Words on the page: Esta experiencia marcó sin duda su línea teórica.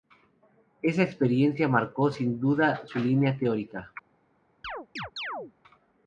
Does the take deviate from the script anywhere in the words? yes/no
yes